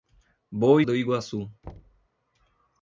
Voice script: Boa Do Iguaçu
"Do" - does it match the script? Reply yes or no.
yes